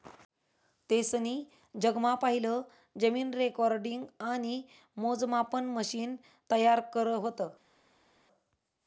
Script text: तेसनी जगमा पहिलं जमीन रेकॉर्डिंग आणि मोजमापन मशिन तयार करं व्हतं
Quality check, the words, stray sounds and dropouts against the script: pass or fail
pass